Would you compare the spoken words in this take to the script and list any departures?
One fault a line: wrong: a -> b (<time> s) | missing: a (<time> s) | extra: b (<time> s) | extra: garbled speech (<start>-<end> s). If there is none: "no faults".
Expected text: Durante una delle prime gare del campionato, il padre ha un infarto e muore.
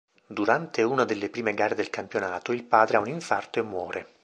no faults